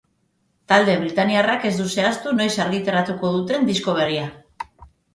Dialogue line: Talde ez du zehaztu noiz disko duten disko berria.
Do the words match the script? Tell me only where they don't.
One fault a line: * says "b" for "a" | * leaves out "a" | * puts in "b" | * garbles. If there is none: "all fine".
* puts in "britainiarrak"
* says "argitaratuko" for "disko"